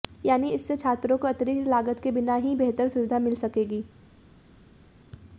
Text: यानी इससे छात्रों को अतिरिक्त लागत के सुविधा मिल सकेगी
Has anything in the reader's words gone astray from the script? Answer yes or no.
yes